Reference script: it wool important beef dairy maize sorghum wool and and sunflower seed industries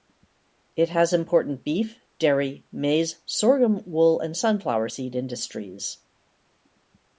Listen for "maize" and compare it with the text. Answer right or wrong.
right